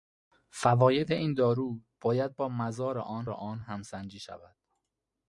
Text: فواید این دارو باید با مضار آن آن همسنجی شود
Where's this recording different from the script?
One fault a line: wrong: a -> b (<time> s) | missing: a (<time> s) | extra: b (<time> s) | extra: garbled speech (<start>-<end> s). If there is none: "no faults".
no faults